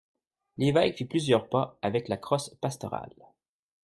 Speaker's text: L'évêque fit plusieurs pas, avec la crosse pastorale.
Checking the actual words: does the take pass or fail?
pass